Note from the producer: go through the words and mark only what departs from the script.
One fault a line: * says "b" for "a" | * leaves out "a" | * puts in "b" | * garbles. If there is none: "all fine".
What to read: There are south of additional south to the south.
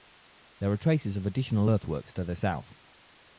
* says "traces" for "south"
* says "earthworks" for "south"